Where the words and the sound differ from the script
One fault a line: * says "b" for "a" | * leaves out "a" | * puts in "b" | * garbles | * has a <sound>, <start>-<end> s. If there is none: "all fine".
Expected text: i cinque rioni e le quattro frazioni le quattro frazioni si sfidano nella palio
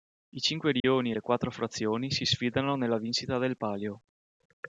* has a dropout, 0.8-0.8 s
* leaves out "le quattro frazioni"
* puts in "vincita del"